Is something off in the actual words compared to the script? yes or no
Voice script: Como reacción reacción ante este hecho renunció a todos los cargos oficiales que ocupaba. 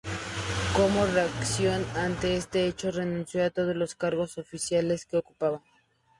yes